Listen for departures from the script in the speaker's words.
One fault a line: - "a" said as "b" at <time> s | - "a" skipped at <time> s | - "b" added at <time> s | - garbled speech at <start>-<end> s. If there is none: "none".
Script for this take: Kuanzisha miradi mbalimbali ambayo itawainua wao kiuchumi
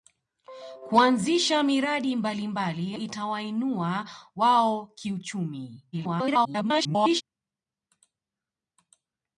- "ambayo" skipped at 3.0 s
- garbled speech at 5.9-7.2 s